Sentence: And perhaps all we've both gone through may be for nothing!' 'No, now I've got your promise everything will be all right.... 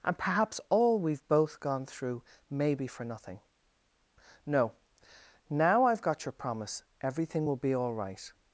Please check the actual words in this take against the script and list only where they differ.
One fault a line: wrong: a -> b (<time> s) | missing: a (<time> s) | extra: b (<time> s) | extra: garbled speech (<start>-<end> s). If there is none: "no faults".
no faults